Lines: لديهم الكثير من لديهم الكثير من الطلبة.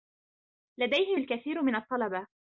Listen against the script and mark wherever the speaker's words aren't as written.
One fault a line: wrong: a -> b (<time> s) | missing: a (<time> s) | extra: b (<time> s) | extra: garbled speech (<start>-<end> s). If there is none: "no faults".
missing: لديهم الكثير من (1.7 s)